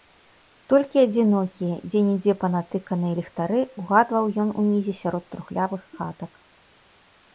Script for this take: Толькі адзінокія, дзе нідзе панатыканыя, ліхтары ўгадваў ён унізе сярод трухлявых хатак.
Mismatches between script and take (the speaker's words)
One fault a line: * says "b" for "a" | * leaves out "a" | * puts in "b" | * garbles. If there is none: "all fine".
all fine